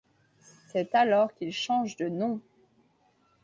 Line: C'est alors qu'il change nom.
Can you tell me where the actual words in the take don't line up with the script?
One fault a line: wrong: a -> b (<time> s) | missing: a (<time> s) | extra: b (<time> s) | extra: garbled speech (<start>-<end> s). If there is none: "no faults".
extra: de (1.9 s)